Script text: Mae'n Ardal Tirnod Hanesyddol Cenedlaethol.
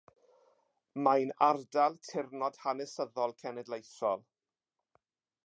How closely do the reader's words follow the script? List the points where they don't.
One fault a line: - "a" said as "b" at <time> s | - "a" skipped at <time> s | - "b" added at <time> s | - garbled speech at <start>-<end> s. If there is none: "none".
none